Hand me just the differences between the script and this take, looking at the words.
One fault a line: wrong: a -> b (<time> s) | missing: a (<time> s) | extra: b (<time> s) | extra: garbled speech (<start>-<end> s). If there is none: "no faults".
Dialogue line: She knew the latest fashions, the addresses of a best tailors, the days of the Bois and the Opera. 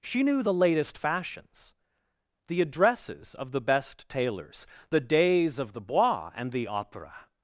wrong: a -> the (3.5 s)